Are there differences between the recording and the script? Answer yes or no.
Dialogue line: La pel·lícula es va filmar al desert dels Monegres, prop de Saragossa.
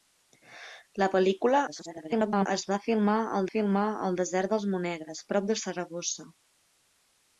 yes